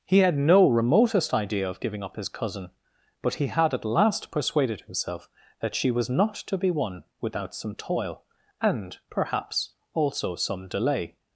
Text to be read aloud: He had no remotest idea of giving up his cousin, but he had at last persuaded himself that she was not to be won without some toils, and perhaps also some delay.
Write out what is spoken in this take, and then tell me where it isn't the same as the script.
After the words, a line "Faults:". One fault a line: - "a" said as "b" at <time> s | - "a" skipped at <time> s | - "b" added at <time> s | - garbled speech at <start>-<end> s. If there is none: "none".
He had no remotest idea of giving up his cousin, but he had at last persuaded himself that she was not to be won without some toil, and perhaps also some delay.
Faults:
- "toils" said as "toil" at 7.8 s